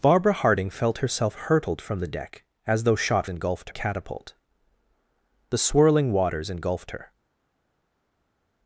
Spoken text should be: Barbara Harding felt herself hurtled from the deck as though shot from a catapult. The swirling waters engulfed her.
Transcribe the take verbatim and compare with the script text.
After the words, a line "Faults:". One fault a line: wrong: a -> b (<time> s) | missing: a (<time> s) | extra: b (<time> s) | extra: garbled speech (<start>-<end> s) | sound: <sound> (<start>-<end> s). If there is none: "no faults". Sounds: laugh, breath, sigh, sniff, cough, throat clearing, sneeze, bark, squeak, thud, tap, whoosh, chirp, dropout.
Barbara Harding felt herself hurtled from the deck as though shot engulfed a catapult. The swirling waters engulfed her.
Faults:
wrong: from -> engulfed (3.3 s)